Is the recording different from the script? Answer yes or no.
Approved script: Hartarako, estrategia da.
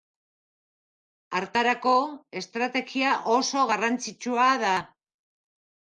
yes